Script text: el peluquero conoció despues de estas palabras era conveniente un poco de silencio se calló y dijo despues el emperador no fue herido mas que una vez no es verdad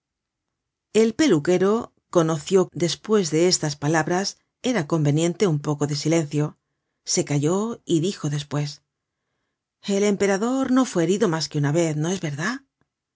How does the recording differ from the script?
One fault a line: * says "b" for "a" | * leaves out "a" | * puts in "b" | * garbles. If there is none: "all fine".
all fine